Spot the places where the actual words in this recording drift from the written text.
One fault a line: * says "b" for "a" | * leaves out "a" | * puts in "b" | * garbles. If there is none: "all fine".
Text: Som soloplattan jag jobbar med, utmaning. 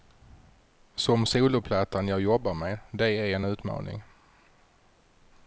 * puts in "det är en"